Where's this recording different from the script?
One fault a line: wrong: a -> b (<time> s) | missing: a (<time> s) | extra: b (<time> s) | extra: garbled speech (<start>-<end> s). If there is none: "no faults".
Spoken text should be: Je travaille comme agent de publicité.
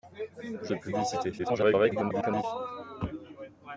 missing: travaille comme agent (0.7 s)
extra: garbled speech (1.4-2.4 s)